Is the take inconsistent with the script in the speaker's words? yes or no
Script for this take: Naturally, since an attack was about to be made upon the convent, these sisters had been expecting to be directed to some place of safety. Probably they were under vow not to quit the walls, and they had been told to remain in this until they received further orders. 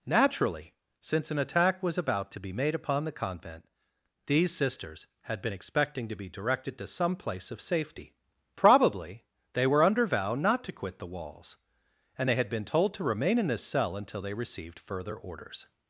yes